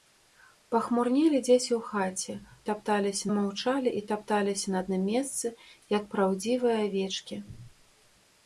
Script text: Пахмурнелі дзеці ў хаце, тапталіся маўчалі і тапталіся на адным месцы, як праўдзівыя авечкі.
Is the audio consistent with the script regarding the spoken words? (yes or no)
yes